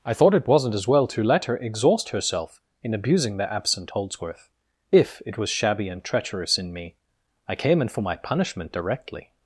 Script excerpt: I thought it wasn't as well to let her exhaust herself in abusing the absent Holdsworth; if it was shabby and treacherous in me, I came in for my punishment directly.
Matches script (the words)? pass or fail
pass